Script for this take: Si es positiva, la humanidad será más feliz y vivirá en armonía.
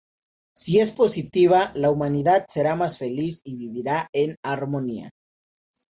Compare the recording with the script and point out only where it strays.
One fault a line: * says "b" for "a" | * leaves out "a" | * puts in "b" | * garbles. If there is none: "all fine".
all fine